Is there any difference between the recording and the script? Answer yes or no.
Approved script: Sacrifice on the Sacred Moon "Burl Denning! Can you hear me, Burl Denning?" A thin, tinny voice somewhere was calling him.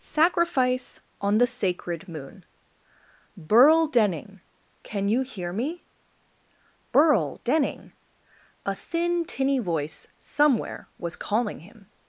no